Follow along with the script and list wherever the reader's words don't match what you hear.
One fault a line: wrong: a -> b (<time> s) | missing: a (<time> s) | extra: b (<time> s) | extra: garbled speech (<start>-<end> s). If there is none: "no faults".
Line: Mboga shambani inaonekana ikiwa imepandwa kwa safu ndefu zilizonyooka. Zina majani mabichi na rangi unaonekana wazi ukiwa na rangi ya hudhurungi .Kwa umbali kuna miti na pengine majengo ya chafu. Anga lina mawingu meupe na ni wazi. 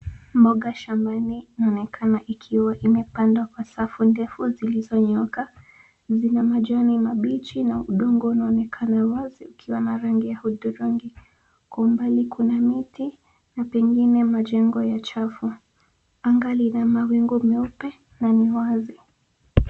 wrong: rangi -> udongo (7.8 s)